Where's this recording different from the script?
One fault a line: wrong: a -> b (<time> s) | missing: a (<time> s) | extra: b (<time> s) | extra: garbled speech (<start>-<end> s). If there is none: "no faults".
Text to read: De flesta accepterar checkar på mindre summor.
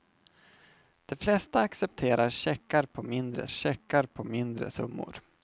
extra: checkar på mindre (3.5 s)